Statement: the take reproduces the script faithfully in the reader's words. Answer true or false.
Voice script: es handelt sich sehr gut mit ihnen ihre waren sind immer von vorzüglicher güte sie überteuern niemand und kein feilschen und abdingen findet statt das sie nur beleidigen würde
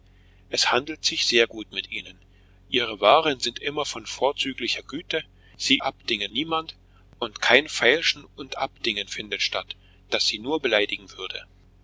false